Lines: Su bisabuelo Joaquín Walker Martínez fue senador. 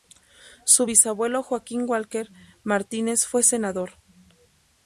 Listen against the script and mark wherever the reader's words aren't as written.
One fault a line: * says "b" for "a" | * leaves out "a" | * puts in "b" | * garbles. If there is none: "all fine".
all fine